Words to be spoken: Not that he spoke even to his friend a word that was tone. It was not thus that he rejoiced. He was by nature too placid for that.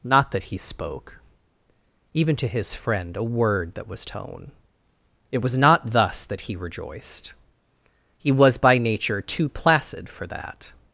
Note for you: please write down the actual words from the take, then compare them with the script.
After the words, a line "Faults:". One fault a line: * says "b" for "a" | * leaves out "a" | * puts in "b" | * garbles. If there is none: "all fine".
Not that he spoke even to his friend a word that was tone. It was not thus that he rejoiced. He was by nature too placid for that.
Faults:
all fine